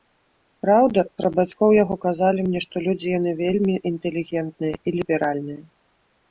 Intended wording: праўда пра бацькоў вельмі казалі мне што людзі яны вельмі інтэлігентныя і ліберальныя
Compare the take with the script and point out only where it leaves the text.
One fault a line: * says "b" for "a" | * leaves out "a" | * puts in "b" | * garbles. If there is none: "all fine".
* says "яго" for "вельмі"